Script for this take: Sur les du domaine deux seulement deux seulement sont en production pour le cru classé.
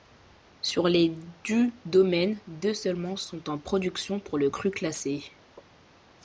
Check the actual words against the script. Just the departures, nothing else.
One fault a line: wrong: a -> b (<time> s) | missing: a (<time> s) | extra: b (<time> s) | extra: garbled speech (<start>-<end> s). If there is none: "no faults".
missing: deux seulement (3.1 s)